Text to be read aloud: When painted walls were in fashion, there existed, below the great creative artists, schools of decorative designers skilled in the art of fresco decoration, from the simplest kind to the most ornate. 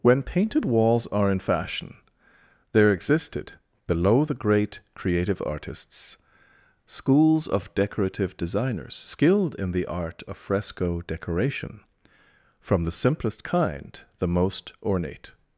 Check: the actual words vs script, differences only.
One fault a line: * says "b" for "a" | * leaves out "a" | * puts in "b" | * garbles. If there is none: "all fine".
* says "are" for "were"
* leaves out "to"